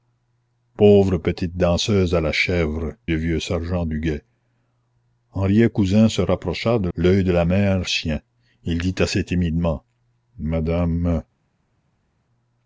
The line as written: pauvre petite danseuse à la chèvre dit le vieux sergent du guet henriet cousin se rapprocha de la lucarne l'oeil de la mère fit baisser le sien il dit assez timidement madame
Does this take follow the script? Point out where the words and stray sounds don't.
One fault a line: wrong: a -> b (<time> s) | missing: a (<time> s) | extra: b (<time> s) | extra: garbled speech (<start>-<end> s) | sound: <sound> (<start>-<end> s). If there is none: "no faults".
missing: dit (2.9 s)
missing: la lucarne (6.9 s)
missing: fit baisser le (7.9 s)